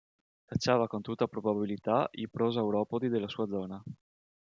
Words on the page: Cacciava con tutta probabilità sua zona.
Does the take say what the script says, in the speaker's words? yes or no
no